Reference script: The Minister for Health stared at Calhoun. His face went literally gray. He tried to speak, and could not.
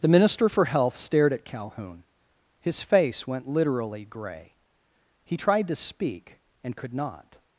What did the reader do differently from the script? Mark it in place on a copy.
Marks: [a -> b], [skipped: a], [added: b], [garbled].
The Minister for Health stared at Calhoun. His face went literally gray. He tried to speak, and could not.